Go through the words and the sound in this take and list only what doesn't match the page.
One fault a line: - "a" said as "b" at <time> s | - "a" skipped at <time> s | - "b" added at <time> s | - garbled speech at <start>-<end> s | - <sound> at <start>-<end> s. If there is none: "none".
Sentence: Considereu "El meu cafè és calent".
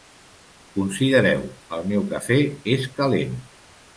none